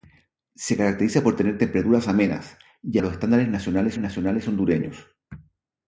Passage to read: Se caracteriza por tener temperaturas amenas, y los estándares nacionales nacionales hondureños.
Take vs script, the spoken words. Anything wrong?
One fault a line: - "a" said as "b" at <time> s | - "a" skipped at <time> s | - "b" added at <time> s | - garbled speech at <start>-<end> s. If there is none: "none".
none